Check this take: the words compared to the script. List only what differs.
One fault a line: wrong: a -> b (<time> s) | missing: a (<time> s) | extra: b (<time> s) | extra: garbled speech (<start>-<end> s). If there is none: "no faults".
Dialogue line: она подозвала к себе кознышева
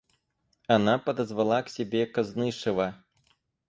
no faults